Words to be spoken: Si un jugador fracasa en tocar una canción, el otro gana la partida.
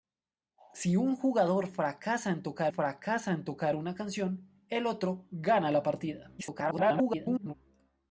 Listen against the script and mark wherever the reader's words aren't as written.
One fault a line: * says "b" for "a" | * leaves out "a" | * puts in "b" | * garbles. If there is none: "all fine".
* puts in "fracasa en tocar"
* garbles